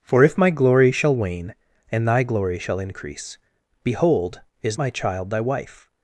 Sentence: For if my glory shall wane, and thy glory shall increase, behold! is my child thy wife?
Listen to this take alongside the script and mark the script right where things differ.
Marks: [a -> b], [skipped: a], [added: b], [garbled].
For if my glory shall wane, and thy glory shall increase, behold! is my child thy wife?